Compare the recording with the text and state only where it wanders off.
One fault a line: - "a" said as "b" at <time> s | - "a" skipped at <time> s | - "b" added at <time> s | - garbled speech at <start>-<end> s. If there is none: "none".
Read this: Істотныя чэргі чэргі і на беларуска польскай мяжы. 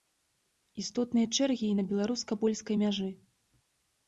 - "чэргі" skipped at 1.7 s